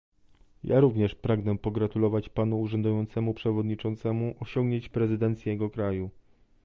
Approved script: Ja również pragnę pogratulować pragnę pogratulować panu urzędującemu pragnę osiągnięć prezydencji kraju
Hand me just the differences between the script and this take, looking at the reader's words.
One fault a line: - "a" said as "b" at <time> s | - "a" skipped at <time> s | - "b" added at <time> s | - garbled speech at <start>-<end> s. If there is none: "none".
- "pragnę pogratulować" skipped at 2.3 s
- "pragnę" said as "przewodniczącemu" at 3.3 s
- "jego" added at 5.5 s